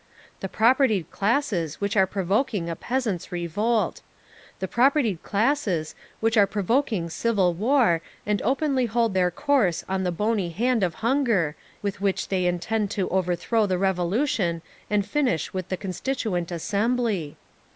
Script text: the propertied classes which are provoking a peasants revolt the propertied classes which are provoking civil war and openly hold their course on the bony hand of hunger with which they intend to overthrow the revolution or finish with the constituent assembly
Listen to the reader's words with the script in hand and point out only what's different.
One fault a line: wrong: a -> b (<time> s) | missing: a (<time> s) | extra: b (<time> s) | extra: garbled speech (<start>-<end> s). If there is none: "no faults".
wrong: or -> and (14.9 s)